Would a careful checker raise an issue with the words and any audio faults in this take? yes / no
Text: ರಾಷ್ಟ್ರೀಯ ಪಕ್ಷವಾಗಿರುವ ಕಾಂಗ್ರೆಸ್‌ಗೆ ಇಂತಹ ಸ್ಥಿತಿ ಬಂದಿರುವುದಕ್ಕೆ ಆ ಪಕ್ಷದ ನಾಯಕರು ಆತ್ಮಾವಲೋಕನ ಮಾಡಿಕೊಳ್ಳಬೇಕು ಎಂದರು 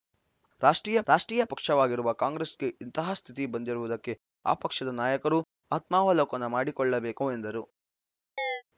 yes